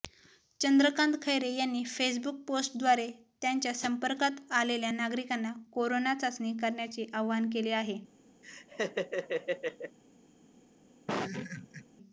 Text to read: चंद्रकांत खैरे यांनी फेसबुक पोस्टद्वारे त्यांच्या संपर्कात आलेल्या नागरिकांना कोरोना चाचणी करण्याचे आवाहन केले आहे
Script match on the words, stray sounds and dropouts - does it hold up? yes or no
no